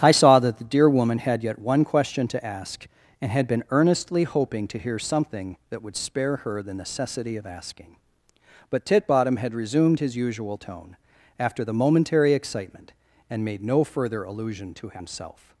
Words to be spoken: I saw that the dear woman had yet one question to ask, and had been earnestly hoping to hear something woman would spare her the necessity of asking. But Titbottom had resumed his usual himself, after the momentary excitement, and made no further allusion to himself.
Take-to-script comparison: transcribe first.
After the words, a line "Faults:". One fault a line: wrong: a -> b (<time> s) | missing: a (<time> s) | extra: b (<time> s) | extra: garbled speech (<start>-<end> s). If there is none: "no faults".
I saw that the dear woman had yet one question to ask, and had been earnestly hoping to hear something that would spare her the necessity of asking. But Titbottom had resumed his usual tone, after the momentary excitement, and made no further allusion to himself.
Faults:
wrong: woman -> that (5.7 s)
wrong: himself -> tone (10.6 s)